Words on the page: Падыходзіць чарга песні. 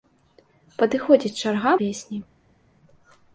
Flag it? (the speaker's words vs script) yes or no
no